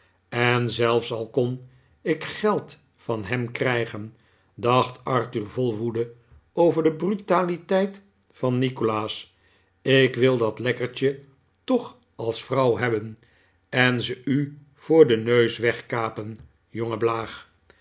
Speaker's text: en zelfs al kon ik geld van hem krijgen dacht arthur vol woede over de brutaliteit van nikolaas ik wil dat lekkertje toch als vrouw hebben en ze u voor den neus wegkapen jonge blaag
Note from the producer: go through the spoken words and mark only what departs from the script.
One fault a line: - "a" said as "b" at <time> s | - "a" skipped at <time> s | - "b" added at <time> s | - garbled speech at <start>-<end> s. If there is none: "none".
none